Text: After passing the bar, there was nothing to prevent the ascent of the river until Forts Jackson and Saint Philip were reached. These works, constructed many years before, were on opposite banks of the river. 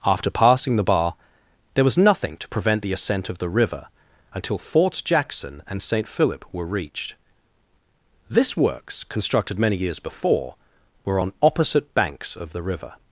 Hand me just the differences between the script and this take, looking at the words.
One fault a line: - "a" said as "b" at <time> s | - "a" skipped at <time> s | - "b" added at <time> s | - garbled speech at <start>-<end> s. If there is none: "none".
- "These" said as "This" at 8.3 s